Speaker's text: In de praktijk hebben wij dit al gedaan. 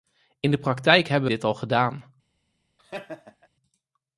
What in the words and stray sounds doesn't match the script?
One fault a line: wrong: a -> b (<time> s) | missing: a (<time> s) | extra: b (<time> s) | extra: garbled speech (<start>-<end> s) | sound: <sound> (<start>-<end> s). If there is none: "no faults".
missing: wij (1.3 s)
sound: laugh (2.8-3.5 s)